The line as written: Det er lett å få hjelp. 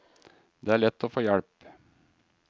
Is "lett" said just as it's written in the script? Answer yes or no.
yes